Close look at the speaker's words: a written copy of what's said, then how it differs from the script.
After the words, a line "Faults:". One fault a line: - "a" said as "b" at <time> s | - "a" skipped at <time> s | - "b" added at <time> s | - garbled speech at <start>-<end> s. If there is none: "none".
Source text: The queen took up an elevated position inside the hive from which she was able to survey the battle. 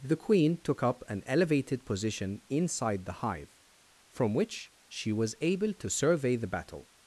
The queen took up an elevated position inside the hive from which she was able to survey the battle.
Faults:
none